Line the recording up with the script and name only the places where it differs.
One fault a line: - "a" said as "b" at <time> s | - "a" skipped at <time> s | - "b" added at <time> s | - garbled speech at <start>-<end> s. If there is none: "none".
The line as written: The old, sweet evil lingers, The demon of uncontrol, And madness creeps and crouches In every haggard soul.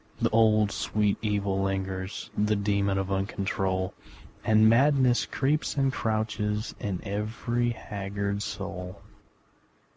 none